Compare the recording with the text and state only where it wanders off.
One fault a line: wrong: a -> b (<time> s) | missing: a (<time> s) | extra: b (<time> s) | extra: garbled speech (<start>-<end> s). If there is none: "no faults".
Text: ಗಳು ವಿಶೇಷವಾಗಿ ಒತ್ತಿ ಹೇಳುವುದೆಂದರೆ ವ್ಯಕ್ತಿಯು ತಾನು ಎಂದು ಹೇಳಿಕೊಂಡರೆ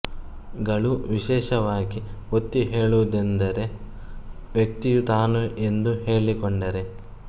no faults